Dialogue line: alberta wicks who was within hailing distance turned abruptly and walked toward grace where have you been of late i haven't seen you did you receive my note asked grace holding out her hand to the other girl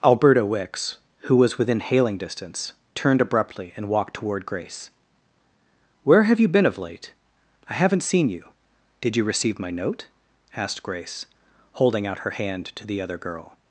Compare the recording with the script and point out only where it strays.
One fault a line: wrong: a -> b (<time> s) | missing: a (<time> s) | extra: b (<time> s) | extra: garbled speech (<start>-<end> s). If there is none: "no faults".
no faults